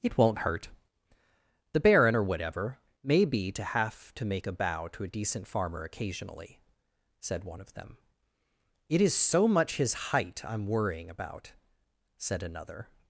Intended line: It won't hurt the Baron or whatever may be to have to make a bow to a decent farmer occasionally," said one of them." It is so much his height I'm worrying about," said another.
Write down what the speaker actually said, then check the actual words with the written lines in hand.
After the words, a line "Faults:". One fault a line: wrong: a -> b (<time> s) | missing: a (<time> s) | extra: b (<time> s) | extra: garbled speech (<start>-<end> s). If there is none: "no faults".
It won't hurt the Baron or whatever may be to have to make a bow to a decent farmer occasionally," said one of them." It is so much his height I'm worrying about," said another.
Faults:
no faults